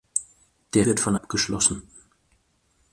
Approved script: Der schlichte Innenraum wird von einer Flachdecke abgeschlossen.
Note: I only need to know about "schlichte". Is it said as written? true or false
false